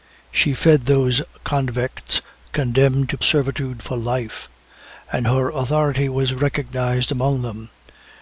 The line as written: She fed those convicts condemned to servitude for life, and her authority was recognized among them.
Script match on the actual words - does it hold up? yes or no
yes